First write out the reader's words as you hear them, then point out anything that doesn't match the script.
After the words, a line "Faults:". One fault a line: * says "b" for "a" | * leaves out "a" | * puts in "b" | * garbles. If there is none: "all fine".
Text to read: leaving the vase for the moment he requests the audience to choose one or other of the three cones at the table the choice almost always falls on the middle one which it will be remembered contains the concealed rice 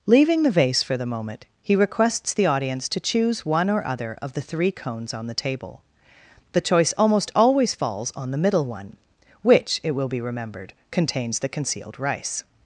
leaving the vase for the moment he requests the audience to choose one or other of the three cones on the table the choice almost always falls on the middle one which it will be remembered contains the concealed rice
Faults:
* says "on" for "at"